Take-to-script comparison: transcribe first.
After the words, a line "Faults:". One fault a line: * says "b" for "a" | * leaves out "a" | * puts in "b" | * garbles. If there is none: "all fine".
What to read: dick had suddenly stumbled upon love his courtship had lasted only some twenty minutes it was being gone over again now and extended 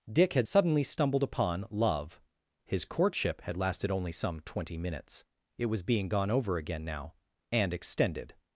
dick had suddenly stumbled upon love his courtship had lasted only some twenty minutes it was being gone over again now and extended
Faults:
all fine